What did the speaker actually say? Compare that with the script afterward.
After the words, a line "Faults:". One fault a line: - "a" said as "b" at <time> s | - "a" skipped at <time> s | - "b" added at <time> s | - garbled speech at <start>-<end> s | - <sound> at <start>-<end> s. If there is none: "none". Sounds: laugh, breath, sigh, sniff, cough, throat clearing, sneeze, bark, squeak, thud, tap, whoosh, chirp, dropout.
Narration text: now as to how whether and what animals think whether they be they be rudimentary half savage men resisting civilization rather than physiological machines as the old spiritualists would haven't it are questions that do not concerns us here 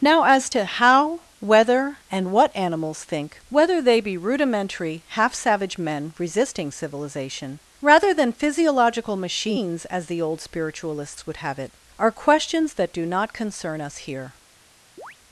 now as to how whether and what animals think whether they be rudimentary half savage men resisting civilization rather than physiological machines as the old spiritualists would have it are questions that do not concern us here
Faults:
- "they be" skipped at 4.2 s
- "haven't" said as "have" at 11.4 s
- "concerns" said as "concern" at 13.3 s
- chirp at 15.0-15.2 s